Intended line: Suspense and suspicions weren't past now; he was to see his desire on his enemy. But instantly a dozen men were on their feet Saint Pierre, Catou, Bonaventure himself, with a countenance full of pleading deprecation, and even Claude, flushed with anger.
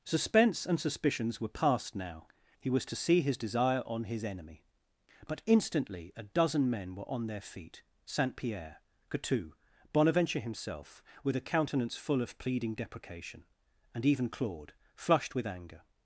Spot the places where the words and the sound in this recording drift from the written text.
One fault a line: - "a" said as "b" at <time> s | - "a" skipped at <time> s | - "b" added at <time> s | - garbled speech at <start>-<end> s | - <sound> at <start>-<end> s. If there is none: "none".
- "weren't" said as "were" at 1.4 s